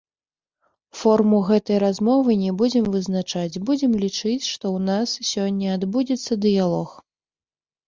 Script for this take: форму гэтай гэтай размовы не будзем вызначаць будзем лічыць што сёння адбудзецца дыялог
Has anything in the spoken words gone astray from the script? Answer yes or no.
yes